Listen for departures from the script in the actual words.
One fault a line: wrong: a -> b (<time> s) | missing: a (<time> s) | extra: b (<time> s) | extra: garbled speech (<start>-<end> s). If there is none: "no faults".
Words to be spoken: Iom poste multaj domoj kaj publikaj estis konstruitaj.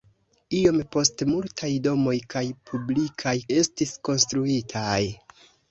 no faults